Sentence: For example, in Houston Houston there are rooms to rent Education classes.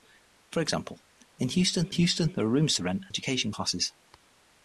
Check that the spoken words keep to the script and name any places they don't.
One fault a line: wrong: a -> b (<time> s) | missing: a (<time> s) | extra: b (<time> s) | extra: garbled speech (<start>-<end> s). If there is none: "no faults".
no faults